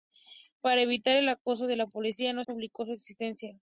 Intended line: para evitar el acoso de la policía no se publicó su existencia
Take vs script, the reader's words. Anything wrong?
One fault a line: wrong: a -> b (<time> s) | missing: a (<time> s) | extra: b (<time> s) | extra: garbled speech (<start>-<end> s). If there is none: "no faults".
missing: se (2.4 s)